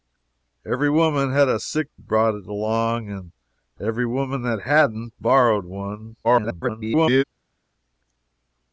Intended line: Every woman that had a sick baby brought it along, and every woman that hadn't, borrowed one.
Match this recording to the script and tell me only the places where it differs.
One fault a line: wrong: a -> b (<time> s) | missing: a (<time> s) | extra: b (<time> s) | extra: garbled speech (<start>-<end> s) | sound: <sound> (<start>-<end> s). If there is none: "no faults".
missing: baby (1.9 s)
extra: garbled speech (6.2-7.2 s)